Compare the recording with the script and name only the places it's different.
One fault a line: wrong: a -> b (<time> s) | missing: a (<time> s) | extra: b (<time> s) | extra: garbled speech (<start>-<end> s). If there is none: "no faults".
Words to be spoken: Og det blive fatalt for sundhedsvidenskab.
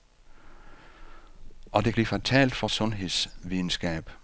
no faults